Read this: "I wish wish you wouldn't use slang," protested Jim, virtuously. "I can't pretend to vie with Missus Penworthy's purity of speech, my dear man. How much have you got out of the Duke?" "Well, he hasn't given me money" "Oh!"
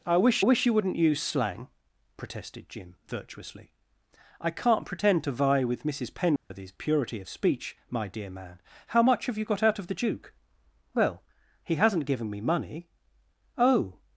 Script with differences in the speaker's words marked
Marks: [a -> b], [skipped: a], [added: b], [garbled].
"I wish wish you wouldn't use slang," protested Jim, virtuously. "I can't pretend to vie with Missus Penworthy's purity of speech, my dear man. How much have you got out of the Duke?" "Well, he hasn't given me money" "Oh!"